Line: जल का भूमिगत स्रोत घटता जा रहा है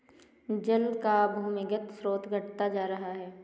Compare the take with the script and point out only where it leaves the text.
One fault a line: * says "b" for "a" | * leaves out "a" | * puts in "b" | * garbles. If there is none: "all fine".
all fine